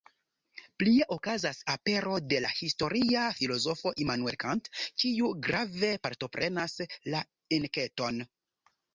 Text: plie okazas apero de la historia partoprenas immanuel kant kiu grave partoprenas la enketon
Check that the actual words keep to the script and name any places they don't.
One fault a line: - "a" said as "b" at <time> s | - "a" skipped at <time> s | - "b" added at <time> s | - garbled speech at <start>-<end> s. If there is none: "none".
- "partoprenas" said as "filozofo" at 3.4 s